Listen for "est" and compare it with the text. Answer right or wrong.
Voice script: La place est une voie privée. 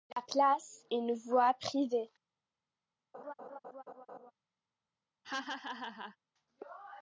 wrong